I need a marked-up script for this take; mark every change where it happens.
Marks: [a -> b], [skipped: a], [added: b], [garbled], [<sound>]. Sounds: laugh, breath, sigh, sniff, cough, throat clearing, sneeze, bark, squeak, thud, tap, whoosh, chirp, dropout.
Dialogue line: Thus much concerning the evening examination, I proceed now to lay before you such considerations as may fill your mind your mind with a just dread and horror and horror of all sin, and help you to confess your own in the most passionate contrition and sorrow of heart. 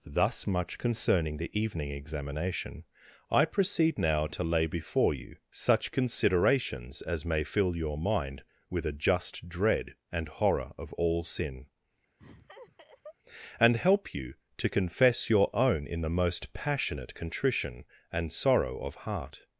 Thus much concerning the evening examination, I proceed now to lay before you such considerations as may fill your mind [skipped: your mind] with a just dread and horror [skipped: and horror] of all sin, [laugh] and help you to confess your own in the most passionate contrition and sorrow of heart.